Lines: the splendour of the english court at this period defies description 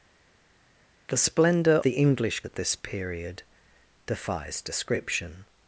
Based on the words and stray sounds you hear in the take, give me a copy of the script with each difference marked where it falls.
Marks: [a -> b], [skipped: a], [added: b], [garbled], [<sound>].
the splendour [skipped: of] the english [skipped: court] at this period defies description